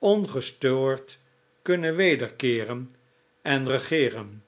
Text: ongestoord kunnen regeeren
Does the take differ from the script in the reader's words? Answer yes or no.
yes